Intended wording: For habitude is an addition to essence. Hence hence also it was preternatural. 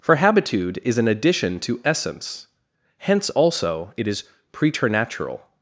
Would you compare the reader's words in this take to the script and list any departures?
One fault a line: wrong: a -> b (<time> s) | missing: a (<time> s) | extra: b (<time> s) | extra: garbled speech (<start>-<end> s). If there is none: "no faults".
missing: hence (3.3 s)
wrong: was -> is (4.1 s)